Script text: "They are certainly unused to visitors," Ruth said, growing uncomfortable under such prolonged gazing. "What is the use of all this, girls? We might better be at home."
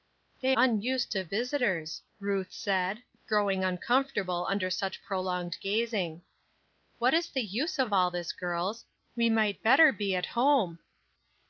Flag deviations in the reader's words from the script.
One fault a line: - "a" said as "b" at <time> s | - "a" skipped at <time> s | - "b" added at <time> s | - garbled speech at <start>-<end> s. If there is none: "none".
- "are certainly" skipped at 0.6 s